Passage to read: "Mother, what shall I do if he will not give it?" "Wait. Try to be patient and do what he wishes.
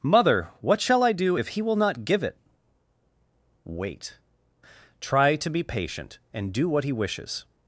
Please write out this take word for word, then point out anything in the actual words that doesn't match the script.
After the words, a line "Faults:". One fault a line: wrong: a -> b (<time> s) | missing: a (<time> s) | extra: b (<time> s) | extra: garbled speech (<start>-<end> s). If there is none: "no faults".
"Mother, what shall I do if he will not give it?" "Wait. Try to be patient and do what he wishes.
Faults:
no faults